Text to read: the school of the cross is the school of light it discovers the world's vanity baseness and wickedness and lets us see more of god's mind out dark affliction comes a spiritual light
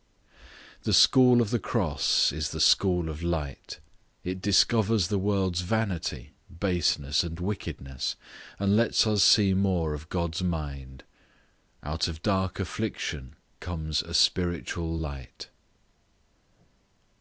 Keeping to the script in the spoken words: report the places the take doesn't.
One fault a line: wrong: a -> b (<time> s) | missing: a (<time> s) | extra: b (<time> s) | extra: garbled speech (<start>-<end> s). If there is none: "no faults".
extra: of (12.1 s)